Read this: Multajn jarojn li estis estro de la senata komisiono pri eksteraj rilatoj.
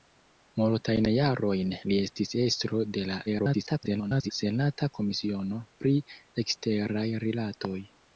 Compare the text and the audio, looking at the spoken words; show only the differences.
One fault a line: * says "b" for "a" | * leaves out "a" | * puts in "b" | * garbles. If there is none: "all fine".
* garbles